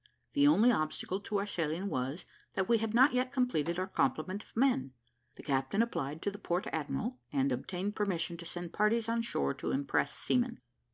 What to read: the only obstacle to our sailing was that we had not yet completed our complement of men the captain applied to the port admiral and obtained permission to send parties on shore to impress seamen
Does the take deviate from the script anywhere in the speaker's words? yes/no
no